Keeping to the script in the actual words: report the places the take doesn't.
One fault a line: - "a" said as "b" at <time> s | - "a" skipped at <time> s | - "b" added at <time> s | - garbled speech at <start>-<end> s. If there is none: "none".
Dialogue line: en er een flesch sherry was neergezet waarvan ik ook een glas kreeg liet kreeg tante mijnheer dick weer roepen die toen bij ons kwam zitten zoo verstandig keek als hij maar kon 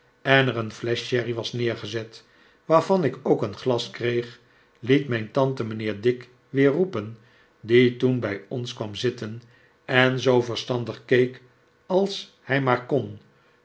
- "kreeg" said as "mijn" at 5.1 s
- "en" added at 9.8 s